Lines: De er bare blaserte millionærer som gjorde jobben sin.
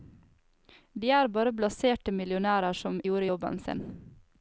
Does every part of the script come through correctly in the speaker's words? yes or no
yes